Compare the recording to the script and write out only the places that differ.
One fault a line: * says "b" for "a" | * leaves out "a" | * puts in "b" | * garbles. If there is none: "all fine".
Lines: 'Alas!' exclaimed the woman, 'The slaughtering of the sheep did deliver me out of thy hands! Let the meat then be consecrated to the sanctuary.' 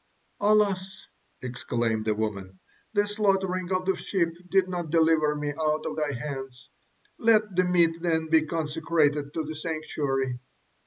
* puts in "not"